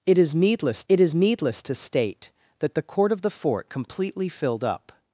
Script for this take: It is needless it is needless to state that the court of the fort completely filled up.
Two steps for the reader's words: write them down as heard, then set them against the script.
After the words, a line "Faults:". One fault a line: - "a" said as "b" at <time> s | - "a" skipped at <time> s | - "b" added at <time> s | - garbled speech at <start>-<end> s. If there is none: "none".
It is needless it is needless to state that the court of the fort completely filled up.
Faults:
none